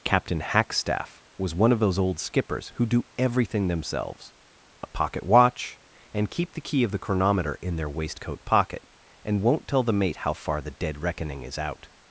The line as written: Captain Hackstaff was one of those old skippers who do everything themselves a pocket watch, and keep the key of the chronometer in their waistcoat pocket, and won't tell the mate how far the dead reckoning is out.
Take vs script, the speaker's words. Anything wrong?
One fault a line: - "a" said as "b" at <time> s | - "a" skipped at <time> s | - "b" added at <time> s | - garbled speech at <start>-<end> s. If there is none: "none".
none